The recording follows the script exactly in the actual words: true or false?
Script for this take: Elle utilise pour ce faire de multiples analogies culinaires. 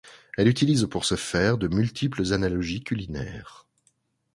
true